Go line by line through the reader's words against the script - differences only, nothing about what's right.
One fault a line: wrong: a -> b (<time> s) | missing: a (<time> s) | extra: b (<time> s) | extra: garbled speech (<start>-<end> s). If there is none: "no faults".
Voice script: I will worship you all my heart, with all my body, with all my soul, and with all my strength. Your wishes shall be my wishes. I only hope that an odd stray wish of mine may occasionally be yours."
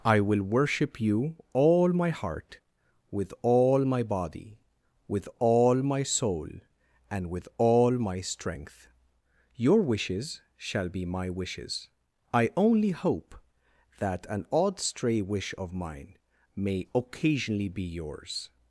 no faults